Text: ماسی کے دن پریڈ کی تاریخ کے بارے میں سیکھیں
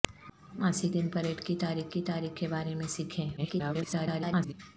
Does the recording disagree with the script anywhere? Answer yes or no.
yes